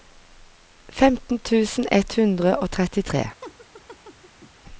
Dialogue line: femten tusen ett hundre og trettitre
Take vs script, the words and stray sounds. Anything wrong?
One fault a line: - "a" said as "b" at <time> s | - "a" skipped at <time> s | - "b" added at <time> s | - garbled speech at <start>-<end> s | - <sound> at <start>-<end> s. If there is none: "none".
- laugh at 3.4-4.5 s